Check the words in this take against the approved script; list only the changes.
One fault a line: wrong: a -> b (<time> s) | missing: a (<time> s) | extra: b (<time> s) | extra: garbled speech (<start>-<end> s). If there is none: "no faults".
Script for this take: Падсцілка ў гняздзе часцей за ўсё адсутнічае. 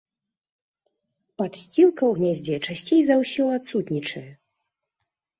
no faults